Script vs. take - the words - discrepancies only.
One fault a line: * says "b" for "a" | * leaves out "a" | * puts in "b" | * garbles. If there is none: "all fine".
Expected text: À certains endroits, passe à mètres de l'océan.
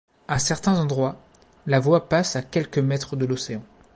* puts in "la voie"
* puts in "quelques"